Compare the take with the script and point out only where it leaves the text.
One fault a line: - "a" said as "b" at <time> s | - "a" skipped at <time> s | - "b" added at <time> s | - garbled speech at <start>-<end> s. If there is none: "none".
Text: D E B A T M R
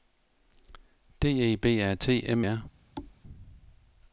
none